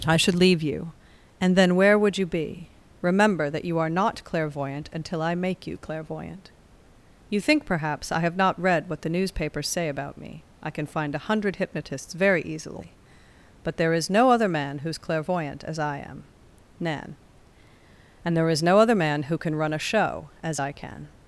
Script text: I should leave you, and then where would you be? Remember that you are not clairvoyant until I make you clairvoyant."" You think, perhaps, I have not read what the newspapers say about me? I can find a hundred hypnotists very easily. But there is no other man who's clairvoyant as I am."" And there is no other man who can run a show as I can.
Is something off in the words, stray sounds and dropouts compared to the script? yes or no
yes